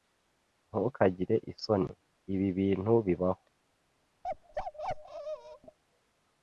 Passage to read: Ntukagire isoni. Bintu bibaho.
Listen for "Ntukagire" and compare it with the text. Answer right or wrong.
right